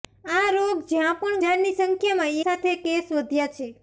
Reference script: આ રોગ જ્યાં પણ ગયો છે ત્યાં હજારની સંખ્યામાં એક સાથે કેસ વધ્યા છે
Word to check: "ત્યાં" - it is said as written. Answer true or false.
false